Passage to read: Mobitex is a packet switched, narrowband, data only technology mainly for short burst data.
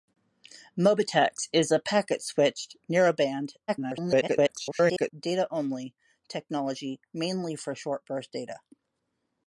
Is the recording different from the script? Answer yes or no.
yes